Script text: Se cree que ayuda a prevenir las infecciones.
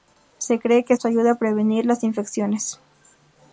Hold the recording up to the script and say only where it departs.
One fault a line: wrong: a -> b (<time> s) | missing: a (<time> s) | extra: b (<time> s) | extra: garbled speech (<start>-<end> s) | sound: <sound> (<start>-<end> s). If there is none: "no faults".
extra: esto (0.9 s)